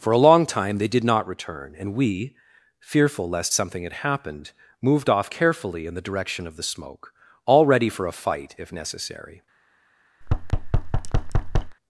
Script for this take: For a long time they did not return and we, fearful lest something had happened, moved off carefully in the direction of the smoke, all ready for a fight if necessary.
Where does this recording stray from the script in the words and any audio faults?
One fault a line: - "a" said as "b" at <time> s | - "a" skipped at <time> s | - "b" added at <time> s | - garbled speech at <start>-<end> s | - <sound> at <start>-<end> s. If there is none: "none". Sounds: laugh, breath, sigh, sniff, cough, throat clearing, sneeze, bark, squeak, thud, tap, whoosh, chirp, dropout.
- thud at 10.2-11.8 s